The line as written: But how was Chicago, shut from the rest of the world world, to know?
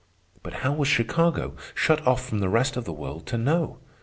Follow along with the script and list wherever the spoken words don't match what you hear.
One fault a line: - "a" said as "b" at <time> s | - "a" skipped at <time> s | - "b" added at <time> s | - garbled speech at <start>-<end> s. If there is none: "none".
- "off" added at 2.1 s
- "world" skipped at 3.3 s